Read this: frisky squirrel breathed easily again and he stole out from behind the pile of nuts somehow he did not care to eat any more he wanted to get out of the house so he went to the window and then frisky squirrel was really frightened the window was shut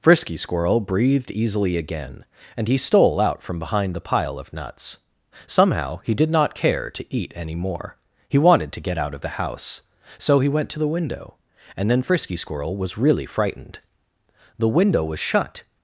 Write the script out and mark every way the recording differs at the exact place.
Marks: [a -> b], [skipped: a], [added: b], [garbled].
frisky squirrel breathed easily again and he stole out from behind the pile of nuts somehow he did not care to eat any more he wanted to get out of the house so he went to the window and then frisky squirrel was really frightened the window was shut